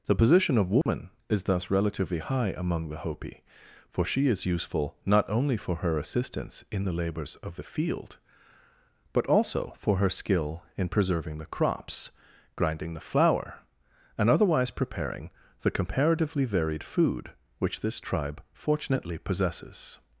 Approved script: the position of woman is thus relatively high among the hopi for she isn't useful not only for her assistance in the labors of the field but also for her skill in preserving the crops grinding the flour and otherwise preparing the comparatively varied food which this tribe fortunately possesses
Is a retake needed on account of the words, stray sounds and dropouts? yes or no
yes